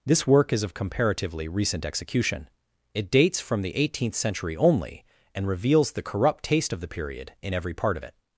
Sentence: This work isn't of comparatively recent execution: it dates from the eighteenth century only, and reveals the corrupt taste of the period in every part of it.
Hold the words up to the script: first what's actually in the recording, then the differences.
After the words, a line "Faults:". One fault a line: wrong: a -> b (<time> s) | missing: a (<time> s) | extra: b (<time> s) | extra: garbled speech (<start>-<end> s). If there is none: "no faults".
This work is of comparatively recent execution: it dates from the eighteenth century only, and reveals the corrupt taste of the period in every part of it.
Faults:
wrong: isn't -> is (0.5 s)